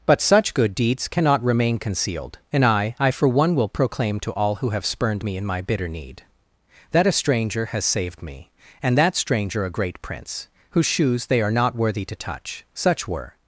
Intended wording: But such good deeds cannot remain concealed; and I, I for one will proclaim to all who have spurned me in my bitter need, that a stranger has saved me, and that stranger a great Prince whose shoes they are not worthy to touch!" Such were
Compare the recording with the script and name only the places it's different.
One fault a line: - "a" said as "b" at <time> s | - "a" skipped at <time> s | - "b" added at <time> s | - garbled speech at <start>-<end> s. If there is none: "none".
none